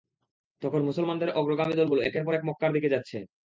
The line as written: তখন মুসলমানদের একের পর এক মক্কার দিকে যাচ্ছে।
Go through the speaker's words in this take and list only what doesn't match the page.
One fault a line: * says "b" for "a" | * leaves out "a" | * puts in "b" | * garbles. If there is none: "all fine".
* puts in "অগ্রগামী দলগুলো"